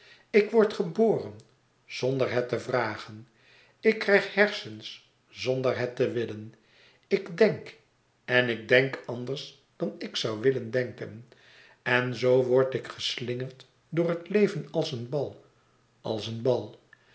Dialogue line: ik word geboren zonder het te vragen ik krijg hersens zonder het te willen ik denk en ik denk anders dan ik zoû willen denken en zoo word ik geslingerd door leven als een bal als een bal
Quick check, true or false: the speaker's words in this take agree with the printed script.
false